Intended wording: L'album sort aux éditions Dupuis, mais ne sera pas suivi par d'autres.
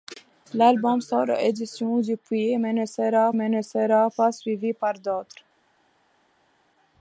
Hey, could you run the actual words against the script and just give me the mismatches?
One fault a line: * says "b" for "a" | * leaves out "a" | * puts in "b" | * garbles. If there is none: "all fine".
* puts in "mais ne sera"